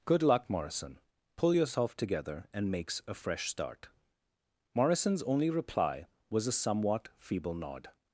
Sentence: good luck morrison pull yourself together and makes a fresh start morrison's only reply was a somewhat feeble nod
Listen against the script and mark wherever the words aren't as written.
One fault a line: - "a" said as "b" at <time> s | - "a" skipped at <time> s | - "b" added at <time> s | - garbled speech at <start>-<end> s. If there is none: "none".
none